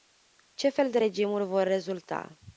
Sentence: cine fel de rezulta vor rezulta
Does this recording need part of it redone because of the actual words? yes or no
yes